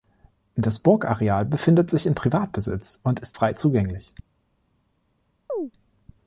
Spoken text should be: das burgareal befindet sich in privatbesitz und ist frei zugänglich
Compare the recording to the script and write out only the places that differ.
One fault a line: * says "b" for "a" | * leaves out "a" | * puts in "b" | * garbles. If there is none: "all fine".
all fine